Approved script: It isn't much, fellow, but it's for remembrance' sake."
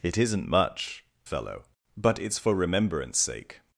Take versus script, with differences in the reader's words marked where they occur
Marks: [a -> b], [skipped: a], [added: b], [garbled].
It isn't much, fellow, but it's for remembrance' sake."